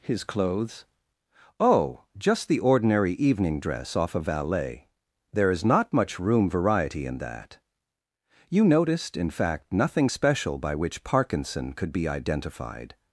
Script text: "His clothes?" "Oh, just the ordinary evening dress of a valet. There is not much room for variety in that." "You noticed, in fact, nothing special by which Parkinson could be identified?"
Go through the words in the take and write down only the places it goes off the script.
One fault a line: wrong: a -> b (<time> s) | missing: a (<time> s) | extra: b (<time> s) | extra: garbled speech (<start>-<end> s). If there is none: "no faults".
wrong: of -> off (4.0 s)
missing: for (6.5 s)